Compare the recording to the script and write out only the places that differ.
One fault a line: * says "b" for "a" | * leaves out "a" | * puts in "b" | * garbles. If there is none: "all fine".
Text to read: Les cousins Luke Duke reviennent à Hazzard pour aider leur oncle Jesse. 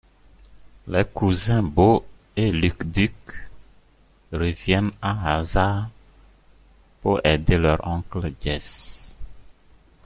* puts in "Bo et"